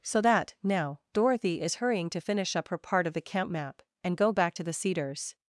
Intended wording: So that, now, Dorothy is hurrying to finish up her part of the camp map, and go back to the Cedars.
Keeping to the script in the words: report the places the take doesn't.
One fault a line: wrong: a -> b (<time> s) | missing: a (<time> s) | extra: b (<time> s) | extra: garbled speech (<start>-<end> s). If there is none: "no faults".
no faults